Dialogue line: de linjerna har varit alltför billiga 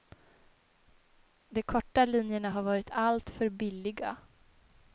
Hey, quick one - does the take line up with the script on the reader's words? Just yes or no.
no